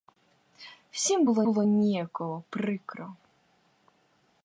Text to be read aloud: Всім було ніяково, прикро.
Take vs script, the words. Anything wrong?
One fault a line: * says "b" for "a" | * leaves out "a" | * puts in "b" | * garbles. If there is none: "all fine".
* puts in "було"